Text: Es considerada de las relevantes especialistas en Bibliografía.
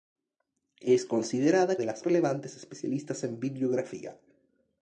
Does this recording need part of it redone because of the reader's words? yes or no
no